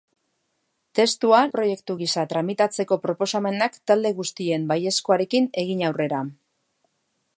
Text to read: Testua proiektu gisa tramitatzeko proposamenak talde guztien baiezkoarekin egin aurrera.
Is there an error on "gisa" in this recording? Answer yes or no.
no